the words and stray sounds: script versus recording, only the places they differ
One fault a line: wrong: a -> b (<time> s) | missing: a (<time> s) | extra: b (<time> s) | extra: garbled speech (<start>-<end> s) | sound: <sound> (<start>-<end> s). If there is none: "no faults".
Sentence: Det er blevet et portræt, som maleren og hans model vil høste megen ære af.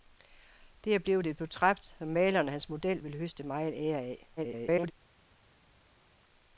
extra: garbled speech (4.4-4.9 s)